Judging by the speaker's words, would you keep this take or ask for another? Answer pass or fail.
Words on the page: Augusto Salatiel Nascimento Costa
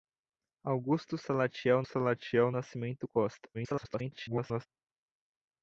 fail